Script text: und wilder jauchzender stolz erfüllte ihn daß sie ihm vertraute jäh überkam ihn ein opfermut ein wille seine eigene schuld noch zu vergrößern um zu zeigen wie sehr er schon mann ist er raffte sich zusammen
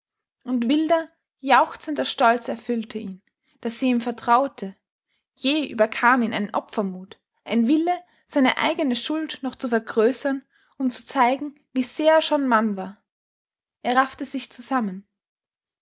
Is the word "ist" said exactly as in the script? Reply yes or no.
no